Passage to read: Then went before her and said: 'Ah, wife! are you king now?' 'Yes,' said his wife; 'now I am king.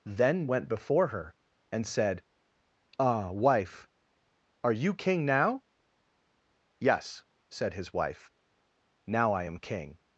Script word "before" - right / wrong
right